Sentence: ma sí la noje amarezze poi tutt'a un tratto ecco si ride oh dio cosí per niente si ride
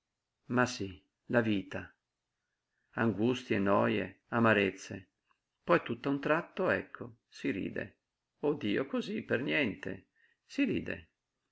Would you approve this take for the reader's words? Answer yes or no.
no